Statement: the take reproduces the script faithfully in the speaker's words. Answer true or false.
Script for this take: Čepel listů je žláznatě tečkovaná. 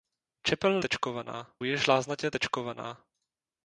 false